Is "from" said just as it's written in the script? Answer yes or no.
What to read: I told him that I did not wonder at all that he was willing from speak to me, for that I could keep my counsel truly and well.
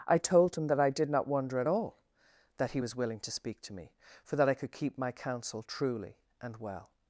no